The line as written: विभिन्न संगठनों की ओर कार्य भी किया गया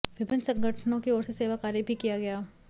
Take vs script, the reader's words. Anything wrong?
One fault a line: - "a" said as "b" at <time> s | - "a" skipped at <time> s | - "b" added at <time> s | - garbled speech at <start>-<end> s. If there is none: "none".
- "से सेवा" added at 1.2 s